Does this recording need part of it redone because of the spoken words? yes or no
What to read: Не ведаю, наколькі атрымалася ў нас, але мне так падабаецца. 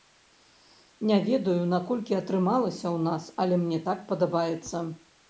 no